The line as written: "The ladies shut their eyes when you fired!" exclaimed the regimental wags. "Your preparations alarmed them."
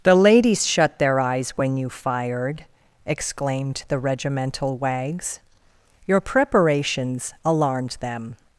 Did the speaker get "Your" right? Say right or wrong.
right